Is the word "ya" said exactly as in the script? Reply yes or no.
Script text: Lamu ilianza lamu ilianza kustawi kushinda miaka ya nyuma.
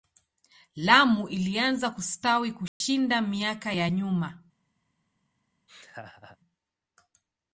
yes